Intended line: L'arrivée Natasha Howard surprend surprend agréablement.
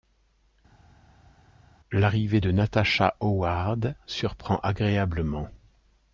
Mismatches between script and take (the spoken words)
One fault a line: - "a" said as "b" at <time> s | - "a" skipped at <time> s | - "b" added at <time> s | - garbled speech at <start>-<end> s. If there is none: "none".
- "de" added at 2.4 s
- "surprend" skipped at 4.6 s